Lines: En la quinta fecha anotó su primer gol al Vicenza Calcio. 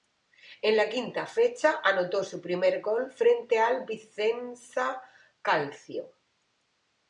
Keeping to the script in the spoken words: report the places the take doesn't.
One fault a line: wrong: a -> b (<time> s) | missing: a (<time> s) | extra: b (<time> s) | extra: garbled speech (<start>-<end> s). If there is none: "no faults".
extra: frente (3.1 s)